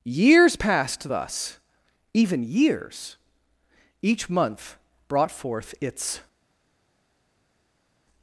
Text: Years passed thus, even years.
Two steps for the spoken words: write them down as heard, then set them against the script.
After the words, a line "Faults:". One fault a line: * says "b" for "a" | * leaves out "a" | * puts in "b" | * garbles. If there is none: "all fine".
Years passed thus, even years. Each month brought forth its
Faults:
* puts in "Each month brought forth its"